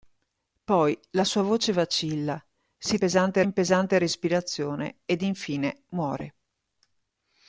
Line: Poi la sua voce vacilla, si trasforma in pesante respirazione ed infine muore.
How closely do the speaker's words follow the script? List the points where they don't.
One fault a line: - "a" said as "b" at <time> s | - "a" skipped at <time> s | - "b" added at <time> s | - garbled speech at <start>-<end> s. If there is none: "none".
- "trasforma" said as "pesante" at 3.0 s